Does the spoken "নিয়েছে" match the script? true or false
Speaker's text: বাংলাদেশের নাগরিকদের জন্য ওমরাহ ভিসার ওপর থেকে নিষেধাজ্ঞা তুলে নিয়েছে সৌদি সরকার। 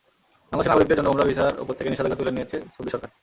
true